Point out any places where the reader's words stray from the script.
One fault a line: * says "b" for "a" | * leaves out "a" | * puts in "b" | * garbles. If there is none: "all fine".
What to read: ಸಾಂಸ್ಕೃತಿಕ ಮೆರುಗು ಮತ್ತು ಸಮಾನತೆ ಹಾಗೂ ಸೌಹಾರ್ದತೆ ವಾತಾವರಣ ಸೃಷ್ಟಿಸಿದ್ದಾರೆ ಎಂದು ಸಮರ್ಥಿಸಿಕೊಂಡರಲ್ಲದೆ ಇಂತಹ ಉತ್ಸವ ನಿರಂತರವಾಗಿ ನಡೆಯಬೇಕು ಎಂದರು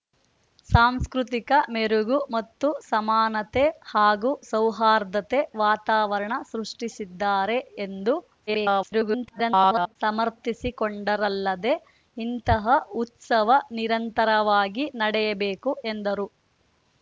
* garbles